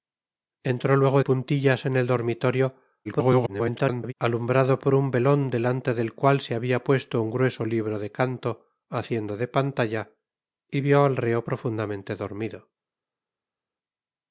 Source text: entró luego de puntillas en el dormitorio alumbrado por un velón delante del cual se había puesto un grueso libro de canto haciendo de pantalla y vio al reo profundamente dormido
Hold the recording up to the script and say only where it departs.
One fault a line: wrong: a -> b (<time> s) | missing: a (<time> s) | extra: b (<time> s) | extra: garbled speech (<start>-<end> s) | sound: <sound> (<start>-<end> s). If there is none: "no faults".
missing: de (1.2 s)
extra: garbled speech (3.0-4.1 s)